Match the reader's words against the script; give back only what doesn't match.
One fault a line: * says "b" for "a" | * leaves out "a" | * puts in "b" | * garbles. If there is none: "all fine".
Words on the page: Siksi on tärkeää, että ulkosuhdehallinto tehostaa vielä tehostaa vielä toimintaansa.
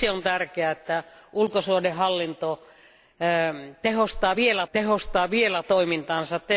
all fine